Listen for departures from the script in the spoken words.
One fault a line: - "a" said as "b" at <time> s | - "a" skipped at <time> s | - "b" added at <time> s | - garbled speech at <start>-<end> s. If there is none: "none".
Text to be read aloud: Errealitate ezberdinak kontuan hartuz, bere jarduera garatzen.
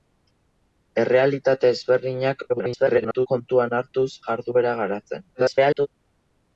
- garbled speech at 2.5-3.3 s
- "bere" skipped at 4.1 s
- garbled speech at 5.3-5.9 s